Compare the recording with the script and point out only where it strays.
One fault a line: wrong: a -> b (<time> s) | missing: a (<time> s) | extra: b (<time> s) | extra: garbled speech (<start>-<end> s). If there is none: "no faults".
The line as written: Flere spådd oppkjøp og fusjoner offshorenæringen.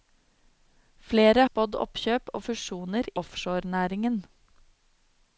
no faults